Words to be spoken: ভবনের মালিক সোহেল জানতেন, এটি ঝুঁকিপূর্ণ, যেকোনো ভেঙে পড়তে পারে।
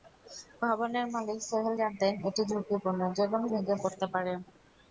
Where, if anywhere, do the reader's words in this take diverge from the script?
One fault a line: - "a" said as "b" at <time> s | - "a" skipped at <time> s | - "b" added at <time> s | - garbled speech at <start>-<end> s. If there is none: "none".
none